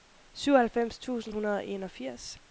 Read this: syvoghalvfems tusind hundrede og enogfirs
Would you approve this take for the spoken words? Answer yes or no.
yes